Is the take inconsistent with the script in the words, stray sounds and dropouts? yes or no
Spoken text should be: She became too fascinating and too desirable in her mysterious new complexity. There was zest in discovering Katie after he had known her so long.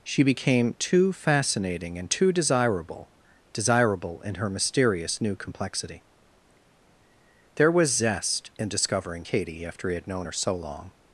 yes